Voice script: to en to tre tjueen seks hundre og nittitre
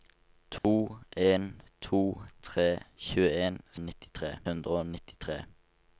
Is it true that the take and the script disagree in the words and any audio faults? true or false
true